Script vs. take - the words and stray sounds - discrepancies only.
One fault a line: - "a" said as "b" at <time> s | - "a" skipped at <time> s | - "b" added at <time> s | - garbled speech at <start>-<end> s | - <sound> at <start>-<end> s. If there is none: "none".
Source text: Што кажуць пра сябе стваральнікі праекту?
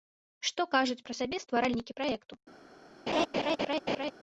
- laugh at 3.1-4.1 s